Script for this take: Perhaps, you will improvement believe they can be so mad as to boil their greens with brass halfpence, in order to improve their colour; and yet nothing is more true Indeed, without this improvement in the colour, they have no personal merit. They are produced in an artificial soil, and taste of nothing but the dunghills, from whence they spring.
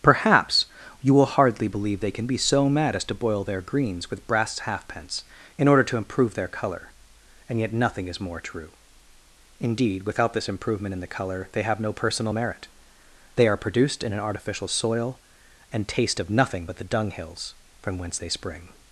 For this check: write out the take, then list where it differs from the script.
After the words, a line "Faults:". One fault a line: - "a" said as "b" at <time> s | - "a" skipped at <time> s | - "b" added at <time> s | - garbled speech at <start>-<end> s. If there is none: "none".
Perhaps, you will hardly believe they can be so mad as to boil their greens with brass halfpence, in order to improve their colour; and yet nothing is more true Indeed, without this improvement in the colour, they have no personal merit. They are produced in an artificial soil, and taste of nothing but the dunghills, from whence they spring.
Faults:
- "improvement" said as "hardly" at 1.3 s